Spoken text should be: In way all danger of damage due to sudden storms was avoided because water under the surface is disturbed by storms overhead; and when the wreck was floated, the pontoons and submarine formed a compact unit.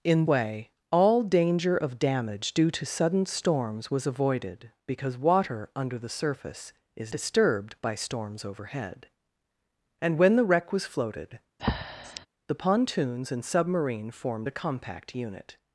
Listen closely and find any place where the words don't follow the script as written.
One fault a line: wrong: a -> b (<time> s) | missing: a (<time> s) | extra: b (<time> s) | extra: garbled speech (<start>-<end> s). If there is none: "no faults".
no faults